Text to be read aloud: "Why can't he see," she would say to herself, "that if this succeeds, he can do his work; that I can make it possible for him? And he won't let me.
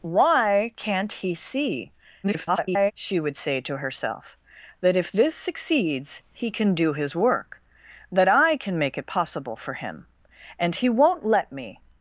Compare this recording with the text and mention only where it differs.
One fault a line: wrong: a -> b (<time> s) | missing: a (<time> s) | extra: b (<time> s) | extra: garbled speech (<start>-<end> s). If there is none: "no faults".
extra: garbled speech (2.2-2.9 s)